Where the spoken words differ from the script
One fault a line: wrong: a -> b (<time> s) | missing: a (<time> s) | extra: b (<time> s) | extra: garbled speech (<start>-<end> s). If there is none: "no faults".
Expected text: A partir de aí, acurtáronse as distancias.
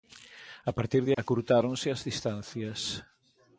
missing: aí (1.1 s)